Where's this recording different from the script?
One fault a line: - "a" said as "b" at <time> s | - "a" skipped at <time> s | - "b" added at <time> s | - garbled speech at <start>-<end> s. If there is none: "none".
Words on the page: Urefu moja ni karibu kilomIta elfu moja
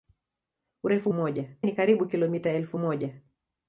none